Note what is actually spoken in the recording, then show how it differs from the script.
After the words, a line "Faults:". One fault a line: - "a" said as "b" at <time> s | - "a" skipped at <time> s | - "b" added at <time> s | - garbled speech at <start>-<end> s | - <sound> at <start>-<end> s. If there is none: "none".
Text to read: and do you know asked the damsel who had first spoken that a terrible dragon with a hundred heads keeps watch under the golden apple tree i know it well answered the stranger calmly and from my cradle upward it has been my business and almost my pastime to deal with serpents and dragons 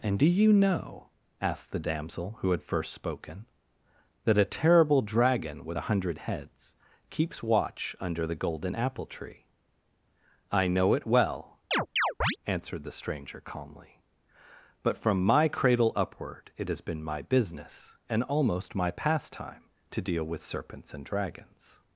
and do you know asked the damsel who had first spoken that a terrible dragon with a hundred heads keeps watch under the golden apple tree i know it well answered the stranger calmly but from my cradle upward it has been my business and almost my pastime to deal with serpents and dragons
Faults:
- chirp at 11.7-12.4 s
- "and" said as "but" at 14.8 s